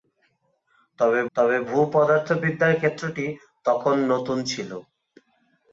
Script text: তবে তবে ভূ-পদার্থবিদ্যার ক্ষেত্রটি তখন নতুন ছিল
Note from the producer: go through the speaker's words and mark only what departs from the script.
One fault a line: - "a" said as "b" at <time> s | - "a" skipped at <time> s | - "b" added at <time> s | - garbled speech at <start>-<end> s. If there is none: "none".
none